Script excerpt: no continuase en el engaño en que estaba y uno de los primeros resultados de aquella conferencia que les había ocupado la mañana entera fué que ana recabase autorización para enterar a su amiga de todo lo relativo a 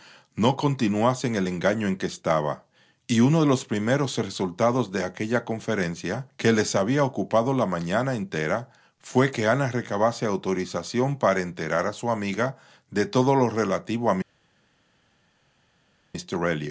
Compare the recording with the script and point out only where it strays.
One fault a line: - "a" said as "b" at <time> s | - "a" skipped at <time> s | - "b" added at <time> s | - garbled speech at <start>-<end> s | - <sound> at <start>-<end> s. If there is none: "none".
none